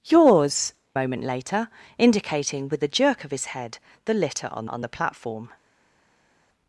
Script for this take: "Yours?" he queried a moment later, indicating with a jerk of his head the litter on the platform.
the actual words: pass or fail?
fail